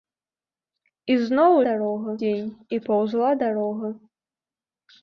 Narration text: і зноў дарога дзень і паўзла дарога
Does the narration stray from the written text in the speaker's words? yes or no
no